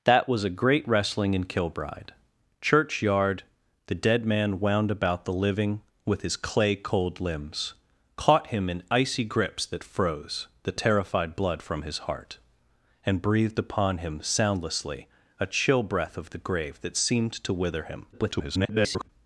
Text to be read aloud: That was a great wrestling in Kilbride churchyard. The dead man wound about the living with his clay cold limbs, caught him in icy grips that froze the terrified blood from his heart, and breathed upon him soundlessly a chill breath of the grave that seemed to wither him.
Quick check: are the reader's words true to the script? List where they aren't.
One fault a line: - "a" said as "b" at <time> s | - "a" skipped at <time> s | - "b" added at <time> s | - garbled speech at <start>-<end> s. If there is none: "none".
- garbled speech at 18.1-19.1 s